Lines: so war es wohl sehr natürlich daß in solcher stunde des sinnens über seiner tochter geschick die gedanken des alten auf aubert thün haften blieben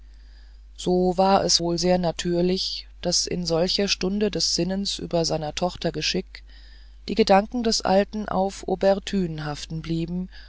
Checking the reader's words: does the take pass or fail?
pass